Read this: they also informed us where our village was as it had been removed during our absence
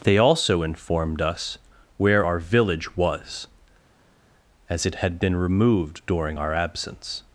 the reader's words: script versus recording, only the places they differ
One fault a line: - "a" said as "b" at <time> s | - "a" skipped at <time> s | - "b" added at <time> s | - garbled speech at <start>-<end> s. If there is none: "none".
none